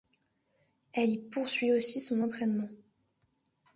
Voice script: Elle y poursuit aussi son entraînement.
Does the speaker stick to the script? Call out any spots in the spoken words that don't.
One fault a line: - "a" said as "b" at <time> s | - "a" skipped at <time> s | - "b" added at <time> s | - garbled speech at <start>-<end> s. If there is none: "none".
none